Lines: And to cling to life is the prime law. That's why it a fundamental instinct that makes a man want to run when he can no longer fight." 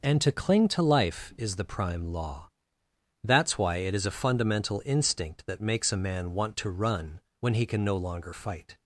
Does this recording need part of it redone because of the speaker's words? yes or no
yes